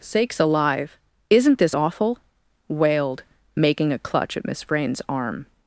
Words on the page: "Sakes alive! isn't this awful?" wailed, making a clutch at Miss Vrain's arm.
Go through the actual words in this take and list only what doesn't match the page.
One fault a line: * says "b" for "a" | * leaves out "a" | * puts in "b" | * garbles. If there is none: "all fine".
all fine